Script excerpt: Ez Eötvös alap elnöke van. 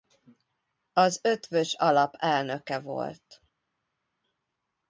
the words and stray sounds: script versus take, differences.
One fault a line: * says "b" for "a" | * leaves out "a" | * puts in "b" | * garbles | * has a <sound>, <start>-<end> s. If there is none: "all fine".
* says "Az" for "Ez"
* says "volt" for "van"